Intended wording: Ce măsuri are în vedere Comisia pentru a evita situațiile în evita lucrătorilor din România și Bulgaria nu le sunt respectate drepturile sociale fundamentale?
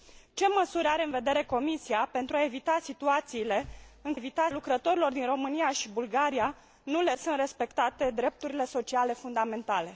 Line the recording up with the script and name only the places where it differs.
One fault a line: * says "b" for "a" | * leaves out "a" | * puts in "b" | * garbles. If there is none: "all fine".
all fine